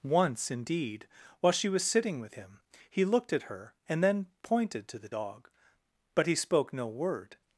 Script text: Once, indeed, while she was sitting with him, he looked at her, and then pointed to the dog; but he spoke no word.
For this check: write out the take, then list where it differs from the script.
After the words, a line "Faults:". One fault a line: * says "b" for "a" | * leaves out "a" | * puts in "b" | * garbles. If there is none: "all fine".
Once, indeed, while she was sitting with him, he looked at her, and then pointed to the dog; but he spoke no word.
Faults:
all fine